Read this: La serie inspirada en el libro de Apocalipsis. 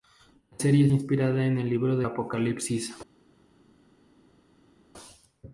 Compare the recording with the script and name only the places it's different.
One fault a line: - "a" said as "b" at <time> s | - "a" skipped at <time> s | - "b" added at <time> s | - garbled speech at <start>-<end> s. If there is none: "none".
none